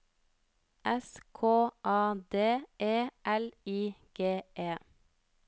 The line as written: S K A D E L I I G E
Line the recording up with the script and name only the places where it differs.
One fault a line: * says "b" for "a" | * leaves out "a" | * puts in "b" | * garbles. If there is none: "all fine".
* leaves out "I"